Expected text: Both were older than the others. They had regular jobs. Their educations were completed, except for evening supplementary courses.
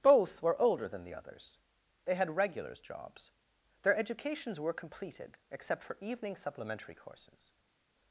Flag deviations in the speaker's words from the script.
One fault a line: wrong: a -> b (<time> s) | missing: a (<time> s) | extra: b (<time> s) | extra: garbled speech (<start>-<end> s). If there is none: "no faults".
wrong: regular -> regulars (2.4 s)